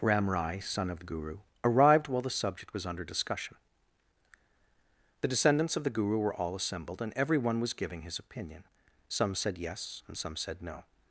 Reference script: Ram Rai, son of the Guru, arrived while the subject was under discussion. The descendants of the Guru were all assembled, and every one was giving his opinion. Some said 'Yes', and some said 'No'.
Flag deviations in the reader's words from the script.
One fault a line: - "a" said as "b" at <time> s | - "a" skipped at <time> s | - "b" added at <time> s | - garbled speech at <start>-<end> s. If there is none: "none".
none